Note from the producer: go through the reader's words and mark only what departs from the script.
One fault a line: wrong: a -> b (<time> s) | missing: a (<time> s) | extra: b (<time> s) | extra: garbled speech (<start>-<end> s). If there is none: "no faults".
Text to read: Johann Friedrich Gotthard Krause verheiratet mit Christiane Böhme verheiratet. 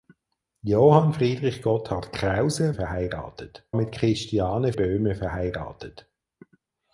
no faults